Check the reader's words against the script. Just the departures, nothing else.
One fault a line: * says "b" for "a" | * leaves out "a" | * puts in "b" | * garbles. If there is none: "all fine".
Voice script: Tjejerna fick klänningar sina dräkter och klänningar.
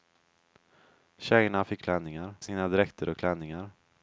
all fine